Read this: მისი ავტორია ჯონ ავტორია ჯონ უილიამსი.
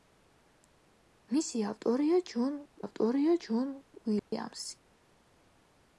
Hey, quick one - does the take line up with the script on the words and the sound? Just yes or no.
no